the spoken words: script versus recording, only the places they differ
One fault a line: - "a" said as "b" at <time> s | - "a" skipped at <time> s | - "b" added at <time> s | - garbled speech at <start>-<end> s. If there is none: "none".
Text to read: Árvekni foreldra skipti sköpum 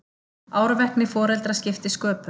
none